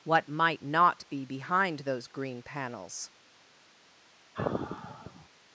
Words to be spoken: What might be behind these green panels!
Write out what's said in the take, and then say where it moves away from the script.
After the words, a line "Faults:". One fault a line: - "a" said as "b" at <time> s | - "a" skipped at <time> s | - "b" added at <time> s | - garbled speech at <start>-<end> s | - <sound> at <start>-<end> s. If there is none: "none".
What might not be behind those green panels!
Faults:
- "not" added at 0.6 s
- "these" said as "those" at 1.8 s
- sigh at 4.3-5.3 s